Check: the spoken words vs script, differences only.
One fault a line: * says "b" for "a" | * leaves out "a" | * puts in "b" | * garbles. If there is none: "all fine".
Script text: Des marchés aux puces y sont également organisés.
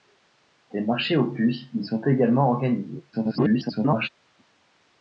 * garbles